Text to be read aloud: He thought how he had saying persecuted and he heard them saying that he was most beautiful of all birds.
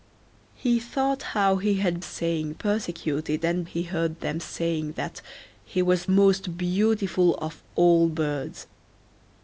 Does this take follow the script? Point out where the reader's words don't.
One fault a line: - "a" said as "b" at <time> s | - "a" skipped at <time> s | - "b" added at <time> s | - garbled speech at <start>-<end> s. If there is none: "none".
none